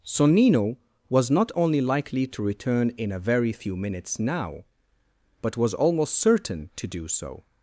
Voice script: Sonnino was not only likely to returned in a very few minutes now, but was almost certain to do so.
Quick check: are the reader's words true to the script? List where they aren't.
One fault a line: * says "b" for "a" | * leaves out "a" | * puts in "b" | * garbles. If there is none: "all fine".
* says "return" for "returned"